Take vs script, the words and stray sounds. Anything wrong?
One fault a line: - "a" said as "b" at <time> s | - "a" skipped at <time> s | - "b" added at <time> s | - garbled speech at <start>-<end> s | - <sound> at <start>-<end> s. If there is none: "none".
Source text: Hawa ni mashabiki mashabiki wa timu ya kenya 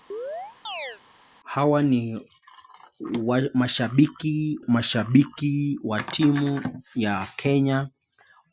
- chirp at 0.1-1.0 s